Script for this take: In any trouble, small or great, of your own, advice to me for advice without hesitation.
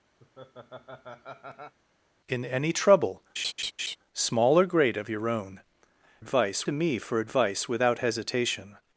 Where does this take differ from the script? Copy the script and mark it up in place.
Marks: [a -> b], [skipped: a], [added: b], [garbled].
In any trouble, small or great, of your own, advice to me for advice without hesitation.